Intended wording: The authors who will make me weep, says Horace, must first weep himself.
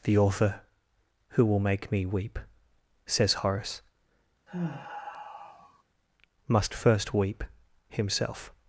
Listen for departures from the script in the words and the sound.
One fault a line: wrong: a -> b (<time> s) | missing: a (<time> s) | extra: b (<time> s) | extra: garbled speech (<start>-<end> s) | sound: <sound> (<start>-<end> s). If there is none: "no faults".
wrong: authors -> author (0.2 s)
sound: sigh (4.5-5.8 s)